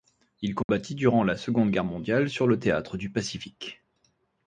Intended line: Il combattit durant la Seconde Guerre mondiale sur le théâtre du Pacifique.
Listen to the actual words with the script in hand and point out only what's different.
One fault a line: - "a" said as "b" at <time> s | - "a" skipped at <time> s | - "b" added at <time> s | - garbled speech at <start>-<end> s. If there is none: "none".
none